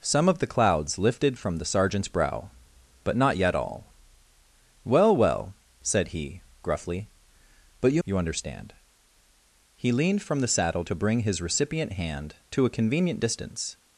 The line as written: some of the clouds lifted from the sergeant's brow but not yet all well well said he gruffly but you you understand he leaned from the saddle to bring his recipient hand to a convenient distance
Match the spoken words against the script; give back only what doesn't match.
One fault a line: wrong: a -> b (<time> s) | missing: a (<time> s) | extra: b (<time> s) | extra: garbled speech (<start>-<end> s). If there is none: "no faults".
no faults